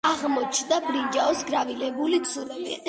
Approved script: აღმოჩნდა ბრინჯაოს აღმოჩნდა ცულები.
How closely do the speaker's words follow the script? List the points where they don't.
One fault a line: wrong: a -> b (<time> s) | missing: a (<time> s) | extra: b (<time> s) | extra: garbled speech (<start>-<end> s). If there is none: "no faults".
wrong: აღმოჩნდა -> გრავირებული (1.5 s)